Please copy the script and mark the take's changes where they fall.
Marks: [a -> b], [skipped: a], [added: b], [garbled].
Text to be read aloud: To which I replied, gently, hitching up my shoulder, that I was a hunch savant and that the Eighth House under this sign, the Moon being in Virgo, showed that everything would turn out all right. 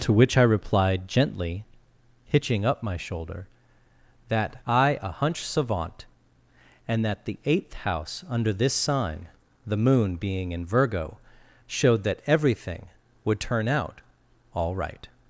To which I replied, gently, hitching up my shoulder, that I [skipped: was] a hunch savant and that the Eighth House under this sign, the Moon being in Virgo, showed that everything would turn out all right.